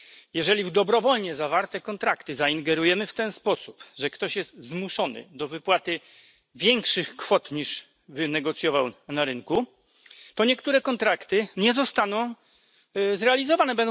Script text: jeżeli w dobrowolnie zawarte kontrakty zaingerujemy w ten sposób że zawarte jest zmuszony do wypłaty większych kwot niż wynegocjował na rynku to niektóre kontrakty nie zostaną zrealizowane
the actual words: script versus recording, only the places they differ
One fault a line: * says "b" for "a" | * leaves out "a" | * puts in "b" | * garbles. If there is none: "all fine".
* says "ktoś" for "zawarte"